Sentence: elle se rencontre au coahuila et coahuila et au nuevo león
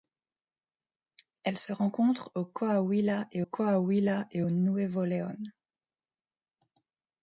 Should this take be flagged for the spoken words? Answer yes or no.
no